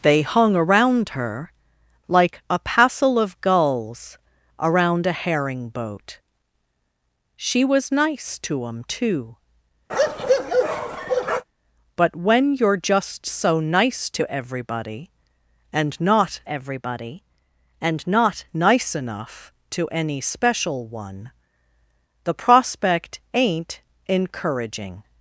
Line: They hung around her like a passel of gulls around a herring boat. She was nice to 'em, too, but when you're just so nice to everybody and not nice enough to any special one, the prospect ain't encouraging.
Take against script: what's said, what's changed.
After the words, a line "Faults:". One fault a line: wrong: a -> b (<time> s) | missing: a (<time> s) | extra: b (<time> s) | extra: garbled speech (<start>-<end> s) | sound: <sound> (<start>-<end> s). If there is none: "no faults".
They hung around her like a passel of gulls around a herring boat. She was nice to 'em, too, but when you're just so nice to everybody and not everybody and not nice enough to any special one, the prospect ain't encouraging.
Faults:
sound: bark (9.9-11.4 s)
extra: everybody and not (16.5 s)